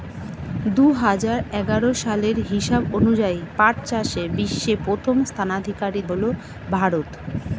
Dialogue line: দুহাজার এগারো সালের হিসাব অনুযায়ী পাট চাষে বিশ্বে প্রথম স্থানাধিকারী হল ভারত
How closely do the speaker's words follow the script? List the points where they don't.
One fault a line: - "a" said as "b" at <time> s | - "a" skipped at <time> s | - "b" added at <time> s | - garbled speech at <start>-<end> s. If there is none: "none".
none